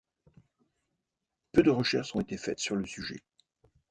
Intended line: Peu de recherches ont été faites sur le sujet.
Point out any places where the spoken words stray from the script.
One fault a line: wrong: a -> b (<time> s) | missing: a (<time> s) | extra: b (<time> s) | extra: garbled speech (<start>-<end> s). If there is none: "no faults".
no faults